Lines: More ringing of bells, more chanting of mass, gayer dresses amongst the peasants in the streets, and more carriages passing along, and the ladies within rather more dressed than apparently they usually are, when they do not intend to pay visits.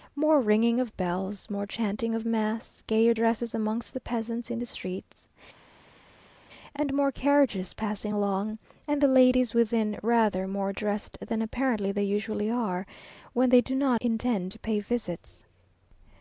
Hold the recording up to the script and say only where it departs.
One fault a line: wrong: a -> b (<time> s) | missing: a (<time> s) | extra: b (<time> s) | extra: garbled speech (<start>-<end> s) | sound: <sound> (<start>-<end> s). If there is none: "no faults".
no faults